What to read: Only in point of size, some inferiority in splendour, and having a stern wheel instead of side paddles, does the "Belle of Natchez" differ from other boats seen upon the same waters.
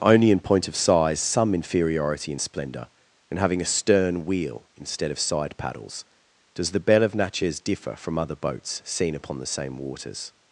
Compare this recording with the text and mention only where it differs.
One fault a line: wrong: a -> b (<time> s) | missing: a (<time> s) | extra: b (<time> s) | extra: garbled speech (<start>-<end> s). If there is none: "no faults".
no faults